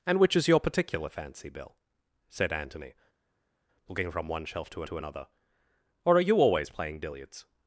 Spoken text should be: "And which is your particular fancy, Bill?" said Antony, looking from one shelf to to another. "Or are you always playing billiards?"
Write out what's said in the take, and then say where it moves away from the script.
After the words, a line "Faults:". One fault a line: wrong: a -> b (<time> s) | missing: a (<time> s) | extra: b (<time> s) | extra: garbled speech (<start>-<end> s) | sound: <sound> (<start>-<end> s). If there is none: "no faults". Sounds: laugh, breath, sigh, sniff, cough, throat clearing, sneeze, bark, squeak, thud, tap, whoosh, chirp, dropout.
"And which is your particular fancy, Bill?" said Antony, looking from one shelf to to another. "Or are you always playing billiards?"
Faults:
no faults